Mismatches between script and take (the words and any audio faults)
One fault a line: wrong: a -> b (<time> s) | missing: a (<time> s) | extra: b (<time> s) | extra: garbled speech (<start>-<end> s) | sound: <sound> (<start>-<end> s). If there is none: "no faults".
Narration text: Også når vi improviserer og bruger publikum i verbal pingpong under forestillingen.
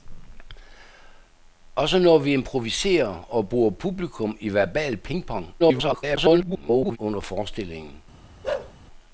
extra: garbled speech (5.6-7.0 s)
sound: bark (8.4-8.7 s)